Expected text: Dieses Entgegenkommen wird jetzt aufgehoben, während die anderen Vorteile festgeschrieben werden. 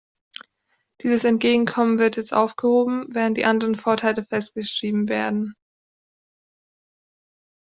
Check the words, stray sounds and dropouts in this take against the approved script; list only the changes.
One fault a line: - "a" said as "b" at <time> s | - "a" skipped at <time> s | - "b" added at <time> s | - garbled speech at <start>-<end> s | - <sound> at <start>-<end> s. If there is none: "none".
none